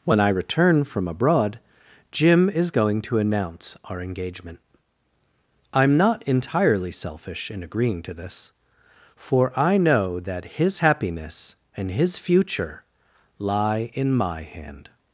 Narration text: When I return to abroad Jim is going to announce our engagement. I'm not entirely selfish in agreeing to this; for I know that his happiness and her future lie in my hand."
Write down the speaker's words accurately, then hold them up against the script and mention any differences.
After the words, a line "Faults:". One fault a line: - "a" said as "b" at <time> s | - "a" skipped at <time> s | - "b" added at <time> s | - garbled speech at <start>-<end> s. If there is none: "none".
When I return from abroad Jim is going to announce our engagement. I'm not entirely selfish in agreeing to this; for I know that his happiness and his future lie in my hand."
Faults:
- "to" said as "from" at 0.8 s
- "her" said as "his" at 11.9 s